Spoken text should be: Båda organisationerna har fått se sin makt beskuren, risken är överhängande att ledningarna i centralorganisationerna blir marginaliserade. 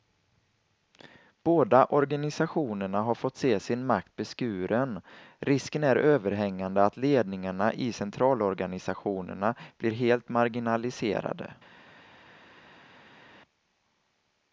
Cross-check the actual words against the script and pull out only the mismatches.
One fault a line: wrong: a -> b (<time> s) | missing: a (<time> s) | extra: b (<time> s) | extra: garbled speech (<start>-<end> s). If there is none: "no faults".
extra: helt (9.9 s)